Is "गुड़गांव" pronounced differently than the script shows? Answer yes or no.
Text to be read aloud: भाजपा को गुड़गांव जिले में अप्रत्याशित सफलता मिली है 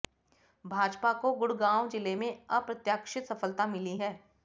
no